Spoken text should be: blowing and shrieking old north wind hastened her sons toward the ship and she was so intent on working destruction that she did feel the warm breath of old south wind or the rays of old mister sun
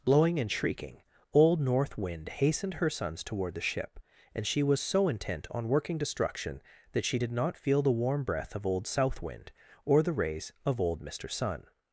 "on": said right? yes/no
yes